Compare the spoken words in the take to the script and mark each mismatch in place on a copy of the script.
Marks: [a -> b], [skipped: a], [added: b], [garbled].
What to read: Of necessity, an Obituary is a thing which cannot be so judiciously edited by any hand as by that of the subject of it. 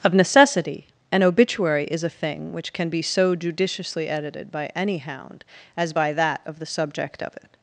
Of necessity, an Obituary is a thing which [cannot -> can] be so judiciously edited by any [hand -> hound] as by that of the subject of it.